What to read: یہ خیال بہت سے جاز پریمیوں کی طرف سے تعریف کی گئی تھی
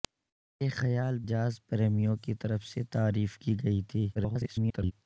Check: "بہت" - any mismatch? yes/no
yes